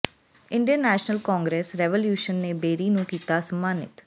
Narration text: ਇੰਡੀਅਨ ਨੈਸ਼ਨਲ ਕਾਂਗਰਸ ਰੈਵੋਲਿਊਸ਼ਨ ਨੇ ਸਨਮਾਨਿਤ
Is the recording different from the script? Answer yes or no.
yes